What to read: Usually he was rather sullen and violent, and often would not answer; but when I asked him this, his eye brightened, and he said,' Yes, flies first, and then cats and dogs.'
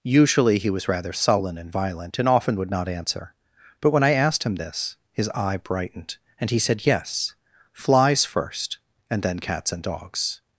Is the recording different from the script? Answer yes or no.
no